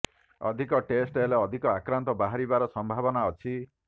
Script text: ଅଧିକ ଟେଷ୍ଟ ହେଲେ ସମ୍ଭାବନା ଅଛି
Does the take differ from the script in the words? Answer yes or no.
yes